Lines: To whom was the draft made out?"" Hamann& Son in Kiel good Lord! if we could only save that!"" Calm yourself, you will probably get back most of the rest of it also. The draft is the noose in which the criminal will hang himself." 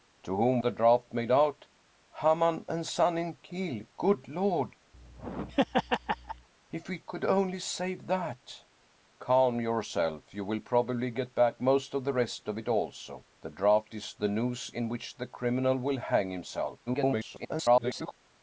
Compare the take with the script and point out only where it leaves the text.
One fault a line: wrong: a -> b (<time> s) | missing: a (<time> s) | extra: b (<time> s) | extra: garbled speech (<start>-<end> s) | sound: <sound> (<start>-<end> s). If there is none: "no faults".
missing: was (0.6 s)
sound: laugh (4.9-6.5 s)
extra: garbled speech (16.9-18.2 s)